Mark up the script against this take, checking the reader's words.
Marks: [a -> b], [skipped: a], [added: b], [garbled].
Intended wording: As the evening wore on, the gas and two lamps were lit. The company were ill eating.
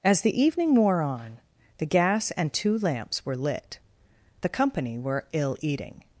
As the evening wore on, the gas and two lamps were lit. The company were ill eating.